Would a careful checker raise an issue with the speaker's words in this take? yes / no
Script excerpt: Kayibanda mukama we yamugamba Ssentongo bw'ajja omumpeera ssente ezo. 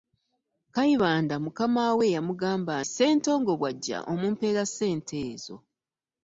no